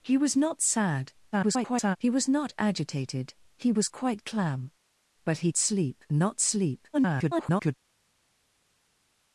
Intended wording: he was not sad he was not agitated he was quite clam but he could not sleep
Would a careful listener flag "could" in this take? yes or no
yes